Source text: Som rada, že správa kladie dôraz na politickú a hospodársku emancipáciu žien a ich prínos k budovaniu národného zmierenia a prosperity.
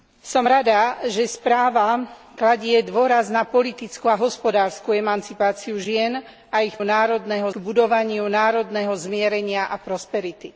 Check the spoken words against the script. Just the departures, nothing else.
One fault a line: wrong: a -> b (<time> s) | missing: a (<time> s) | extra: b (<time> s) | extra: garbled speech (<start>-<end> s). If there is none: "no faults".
wrong: prínos -> národného (6.8 s)